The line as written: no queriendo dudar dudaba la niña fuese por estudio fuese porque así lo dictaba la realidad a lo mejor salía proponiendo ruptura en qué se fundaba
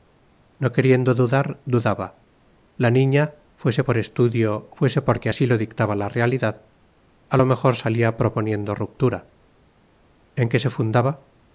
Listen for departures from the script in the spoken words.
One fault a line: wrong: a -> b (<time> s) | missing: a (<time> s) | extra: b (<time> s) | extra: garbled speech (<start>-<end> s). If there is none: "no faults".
no faults